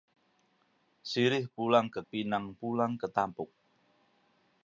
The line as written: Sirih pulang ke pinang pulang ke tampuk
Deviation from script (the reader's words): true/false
false